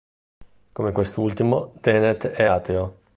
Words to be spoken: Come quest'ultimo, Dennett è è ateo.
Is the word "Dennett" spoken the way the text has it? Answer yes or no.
yes